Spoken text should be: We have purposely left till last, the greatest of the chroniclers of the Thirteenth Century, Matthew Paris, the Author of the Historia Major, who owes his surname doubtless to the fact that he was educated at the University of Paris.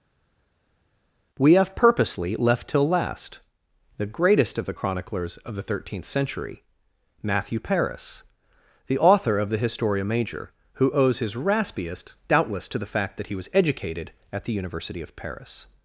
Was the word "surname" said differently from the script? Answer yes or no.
yes